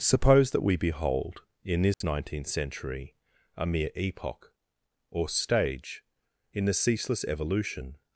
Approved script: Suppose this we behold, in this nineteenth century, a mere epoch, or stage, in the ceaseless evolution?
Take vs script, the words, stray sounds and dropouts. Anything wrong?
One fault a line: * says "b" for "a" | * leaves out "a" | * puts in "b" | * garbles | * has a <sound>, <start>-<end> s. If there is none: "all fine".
* says "that" for "this"
* has a dropout, 1.9-2.0 s